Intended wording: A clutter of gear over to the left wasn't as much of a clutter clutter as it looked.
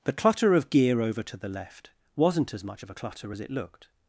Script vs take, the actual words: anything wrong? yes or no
yes